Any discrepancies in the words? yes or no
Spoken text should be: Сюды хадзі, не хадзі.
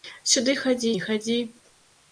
no